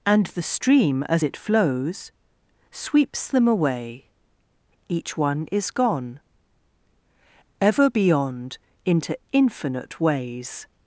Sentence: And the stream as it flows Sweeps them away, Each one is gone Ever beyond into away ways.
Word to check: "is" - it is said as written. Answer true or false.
true